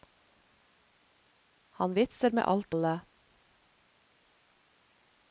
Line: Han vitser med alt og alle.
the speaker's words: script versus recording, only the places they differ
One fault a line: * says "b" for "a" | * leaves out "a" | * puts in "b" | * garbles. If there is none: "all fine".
* leaves out "og"